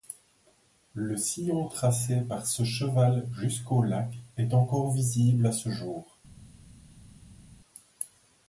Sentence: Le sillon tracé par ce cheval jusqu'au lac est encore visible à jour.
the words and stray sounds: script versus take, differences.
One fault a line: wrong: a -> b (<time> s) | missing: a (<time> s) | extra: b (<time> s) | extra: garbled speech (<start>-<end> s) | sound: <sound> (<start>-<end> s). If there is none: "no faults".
extra: ce (5.5 s)